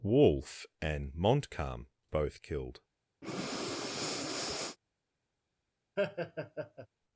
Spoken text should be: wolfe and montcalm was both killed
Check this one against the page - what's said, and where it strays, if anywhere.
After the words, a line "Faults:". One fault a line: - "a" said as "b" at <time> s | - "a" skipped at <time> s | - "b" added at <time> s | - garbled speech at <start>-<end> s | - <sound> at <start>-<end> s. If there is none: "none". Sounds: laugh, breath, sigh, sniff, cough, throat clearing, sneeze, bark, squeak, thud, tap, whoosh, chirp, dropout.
wolfe and montcalm both killed
Faults:
- "was" skipped at 1.9 s
- breath at 3.2-4.8 s
- laugh at 6.0-6.9 s